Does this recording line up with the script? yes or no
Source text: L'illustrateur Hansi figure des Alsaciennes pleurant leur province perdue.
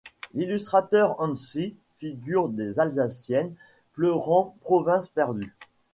no